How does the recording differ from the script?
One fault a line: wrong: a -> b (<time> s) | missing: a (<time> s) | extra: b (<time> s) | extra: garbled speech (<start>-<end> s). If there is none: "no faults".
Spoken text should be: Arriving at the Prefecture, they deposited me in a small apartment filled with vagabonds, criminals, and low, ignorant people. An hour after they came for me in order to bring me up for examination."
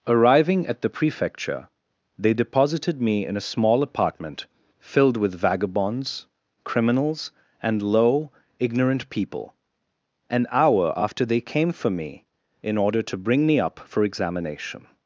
no faults